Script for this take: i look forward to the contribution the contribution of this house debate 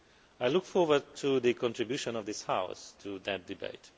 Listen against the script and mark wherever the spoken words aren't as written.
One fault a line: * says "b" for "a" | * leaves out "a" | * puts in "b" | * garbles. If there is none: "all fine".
* leaves out "the contribution"
* puts in "to that"